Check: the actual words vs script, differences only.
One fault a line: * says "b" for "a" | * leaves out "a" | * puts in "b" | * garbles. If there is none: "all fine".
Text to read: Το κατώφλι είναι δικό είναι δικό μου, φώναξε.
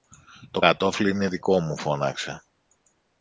* leaves out "είναι δικό"